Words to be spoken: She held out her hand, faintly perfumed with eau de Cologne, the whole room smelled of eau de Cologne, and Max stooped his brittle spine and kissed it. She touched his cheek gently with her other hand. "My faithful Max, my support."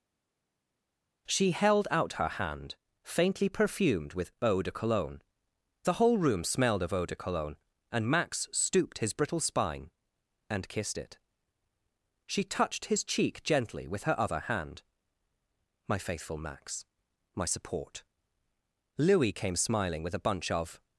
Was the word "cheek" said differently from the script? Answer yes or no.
no